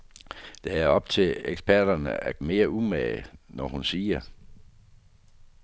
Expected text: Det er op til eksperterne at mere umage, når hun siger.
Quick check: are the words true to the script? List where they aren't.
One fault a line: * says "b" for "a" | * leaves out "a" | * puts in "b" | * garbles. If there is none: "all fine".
all fine